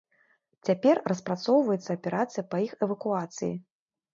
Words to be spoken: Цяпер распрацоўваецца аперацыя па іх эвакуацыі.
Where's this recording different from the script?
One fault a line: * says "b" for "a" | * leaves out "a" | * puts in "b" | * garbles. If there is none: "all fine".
all fine